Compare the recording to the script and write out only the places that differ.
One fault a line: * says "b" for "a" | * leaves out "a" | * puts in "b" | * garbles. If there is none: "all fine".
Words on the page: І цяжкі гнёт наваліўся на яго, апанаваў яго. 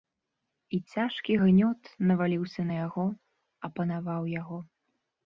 all fine